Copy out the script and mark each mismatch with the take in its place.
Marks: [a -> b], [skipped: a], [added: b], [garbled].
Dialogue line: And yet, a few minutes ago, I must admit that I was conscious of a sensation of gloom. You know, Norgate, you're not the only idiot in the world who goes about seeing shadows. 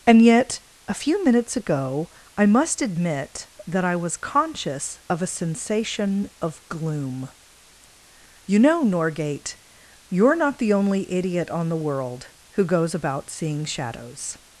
And yet, a few minutes ago, I must admit that I was conscious of a sensation of gloom. You know, Norgate, you're not the only idiot [in -> on] the world who goes about seeing shadows.